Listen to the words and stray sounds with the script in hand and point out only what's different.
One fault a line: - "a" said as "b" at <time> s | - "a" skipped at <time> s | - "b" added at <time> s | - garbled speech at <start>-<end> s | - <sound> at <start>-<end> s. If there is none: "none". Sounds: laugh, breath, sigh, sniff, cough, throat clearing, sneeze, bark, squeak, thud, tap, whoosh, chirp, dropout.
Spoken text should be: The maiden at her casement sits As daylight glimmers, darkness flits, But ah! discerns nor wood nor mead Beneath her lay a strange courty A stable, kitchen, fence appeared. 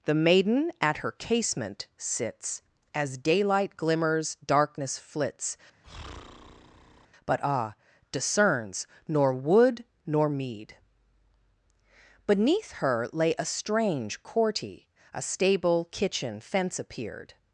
- breath at 5.8-7.1 s